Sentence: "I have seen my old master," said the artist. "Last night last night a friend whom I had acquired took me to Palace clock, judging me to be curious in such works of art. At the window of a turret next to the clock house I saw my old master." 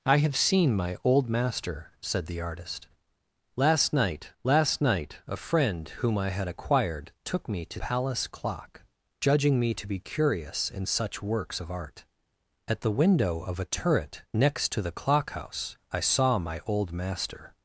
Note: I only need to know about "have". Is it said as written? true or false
true